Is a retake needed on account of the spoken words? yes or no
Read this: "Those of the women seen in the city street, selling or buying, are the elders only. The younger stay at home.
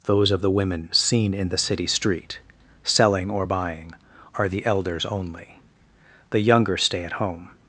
no